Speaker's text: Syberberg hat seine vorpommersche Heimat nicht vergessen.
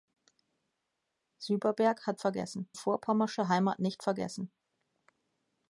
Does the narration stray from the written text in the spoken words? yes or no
yes